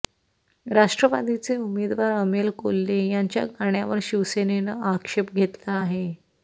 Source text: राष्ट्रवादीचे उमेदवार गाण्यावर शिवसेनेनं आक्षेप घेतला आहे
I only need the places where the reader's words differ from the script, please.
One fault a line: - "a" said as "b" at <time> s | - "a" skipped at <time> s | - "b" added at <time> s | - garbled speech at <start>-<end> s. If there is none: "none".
- "अमोल कोल्हे यांच्या" added at 2.1 s